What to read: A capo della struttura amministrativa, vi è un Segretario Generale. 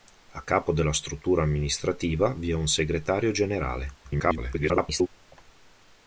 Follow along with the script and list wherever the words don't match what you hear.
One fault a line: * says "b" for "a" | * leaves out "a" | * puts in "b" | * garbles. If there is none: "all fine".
* garbles